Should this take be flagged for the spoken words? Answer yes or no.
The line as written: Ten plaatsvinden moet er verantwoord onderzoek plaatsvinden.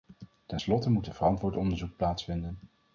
yes